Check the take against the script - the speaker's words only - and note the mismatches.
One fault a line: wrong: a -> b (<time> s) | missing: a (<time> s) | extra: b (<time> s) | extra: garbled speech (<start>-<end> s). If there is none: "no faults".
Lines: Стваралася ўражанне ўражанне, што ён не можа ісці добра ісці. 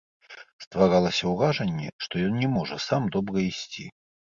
missing: ўражанне (1.9 s)
wrong: ісці -> сам (2.9 s)